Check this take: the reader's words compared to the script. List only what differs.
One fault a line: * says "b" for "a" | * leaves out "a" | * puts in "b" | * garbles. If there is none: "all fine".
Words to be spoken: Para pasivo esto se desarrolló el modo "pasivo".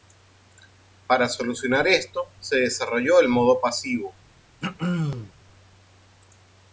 * says "solucionar" for "pasivo"